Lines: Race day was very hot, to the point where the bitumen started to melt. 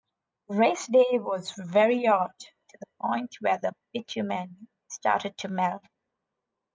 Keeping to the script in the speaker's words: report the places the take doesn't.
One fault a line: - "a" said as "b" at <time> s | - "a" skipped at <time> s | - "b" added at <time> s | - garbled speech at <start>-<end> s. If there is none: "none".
none